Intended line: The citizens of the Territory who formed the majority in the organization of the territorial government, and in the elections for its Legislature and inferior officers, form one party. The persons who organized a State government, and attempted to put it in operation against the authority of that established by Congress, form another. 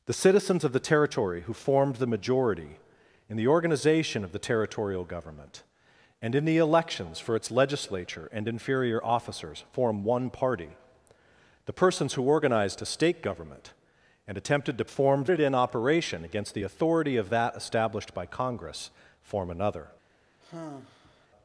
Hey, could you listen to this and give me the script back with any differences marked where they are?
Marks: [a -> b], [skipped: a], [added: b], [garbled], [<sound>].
The citizens of the Territory who formed the majority in the organization of the territorial government, and in the elections for its Legislature and inferior officers, form one party. The persons who organized a State government, and attempted to [put -> formed] it in operation against the authority of that established by Congress, form another. [sigh]